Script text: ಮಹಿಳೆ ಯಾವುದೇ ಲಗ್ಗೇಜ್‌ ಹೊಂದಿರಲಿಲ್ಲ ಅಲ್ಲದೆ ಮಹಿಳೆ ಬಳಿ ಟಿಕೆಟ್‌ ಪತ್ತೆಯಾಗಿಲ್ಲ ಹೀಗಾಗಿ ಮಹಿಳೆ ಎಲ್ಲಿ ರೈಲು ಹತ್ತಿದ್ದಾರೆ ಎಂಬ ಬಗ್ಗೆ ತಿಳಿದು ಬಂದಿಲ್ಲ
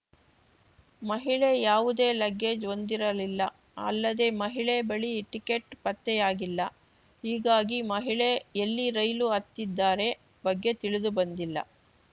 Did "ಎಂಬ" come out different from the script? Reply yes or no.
yes